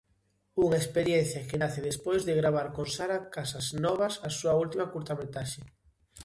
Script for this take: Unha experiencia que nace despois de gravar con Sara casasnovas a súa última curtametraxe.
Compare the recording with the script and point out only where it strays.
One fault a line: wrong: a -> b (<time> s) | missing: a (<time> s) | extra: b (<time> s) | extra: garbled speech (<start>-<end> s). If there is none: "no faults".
no faults